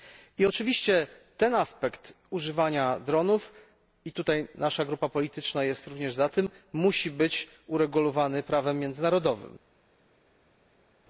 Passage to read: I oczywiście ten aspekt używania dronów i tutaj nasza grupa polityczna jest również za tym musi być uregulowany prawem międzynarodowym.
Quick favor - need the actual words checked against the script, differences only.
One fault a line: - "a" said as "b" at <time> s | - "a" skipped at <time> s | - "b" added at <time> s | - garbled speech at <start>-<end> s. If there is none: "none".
none